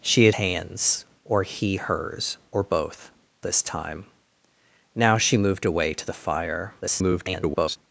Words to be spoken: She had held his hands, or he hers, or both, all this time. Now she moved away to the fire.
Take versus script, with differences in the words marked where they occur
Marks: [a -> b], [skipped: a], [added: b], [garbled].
She had [skipped: held his] hands, or he hers, or both, [skipped: all] this time. Now she moved away to the fire. [garbled]